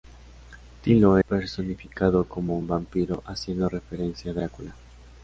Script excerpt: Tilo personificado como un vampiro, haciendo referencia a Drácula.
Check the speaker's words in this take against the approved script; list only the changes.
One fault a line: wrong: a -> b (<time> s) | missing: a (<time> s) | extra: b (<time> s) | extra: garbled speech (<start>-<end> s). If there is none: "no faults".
no faults